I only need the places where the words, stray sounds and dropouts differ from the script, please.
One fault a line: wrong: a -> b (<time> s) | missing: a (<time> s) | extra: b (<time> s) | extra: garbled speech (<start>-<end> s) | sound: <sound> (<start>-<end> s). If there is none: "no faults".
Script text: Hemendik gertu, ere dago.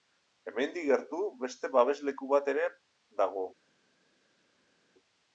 extra: beste babesleku bat (1.4 s)